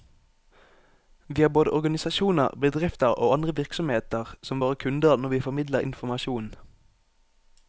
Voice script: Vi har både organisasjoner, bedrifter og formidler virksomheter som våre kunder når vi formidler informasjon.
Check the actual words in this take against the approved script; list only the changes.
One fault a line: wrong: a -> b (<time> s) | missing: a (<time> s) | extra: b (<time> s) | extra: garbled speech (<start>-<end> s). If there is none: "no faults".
wrong: formidler -> andre (3.3 s)